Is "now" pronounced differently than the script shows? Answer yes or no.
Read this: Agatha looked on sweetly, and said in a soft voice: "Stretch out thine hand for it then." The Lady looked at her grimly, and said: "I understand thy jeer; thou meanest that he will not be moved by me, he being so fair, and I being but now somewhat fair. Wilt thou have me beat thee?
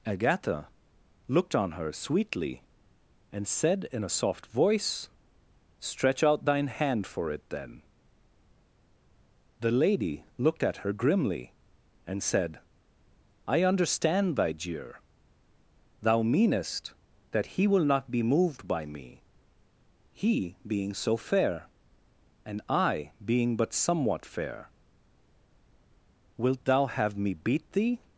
yes